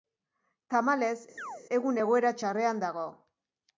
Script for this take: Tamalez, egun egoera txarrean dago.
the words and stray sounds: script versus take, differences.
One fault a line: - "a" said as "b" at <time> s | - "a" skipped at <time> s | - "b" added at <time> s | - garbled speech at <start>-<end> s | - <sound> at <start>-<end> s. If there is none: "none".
- chirp at 1.4-1.6 s